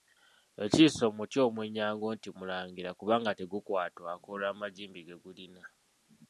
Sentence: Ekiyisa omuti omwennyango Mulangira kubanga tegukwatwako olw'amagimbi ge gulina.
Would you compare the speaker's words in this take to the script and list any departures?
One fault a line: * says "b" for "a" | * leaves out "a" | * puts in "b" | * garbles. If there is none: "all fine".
* puts in "nti"